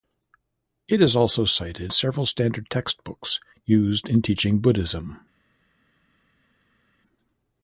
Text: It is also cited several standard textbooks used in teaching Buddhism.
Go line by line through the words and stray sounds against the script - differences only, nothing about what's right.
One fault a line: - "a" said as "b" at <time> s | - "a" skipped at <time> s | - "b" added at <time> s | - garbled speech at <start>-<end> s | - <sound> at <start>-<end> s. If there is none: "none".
none